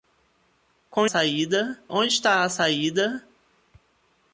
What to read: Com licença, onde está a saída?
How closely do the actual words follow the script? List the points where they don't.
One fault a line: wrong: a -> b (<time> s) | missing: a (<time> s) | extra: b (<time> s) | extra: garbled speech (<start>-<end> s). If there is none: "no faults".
wrong: licença -> saída (1.0 s)